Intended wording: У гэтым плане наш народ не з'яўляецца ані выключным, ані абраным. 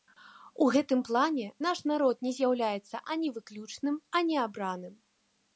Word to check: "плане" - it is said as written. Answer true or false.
true